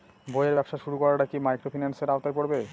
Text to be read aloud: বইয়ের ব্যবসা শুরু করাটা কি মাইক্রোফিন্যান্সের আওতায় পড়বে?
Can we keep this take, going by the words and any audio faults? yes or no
yes